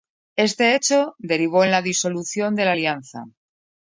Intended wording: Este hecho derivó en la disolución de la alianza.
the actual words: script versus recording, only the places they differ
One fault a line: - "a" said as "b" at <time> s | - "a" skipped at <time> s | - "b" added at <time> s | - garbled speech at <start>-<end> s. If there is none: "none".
none